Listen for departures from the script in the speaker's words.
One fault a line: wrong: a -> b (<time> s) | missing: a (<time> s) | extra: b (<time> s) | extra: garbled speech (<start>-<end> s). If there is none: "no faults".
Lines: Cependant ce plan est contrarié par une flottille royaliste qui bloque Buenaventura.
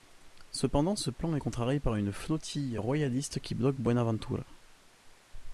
no faults